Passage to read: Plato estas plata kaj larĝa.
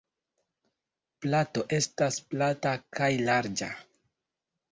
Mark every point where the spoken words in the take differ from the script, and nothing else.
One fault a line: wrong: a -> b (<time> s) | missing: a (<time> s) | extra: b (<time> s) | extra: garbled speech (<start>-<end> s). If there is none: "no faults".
no faults